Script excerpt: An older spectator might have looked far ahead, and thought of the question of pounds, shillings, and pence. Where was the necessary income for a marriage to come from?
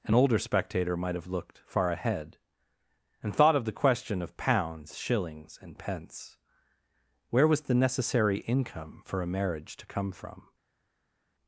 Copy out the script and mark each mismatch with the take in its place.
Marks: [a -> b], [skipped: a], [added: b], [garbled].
An older spectator might have looked far ahead, and thought of the question of pounds, shillings, and pence. Where was the necessary income for a marriage to come from?